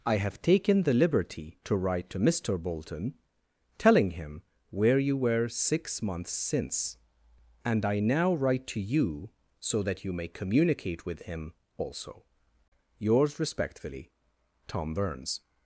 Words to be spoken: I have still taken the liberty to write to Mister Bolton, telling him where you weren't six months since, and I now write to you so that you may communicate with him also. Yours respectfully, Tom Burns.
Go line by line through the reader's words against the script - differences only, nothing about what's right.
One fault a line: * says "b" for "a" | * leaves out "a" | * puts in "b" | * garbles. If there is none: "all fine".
* leaves out "still"
* says "were" for "weren't"